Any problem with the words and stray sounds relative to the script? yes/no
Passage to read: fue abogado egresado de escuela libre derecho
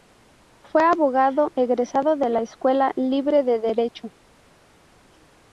yes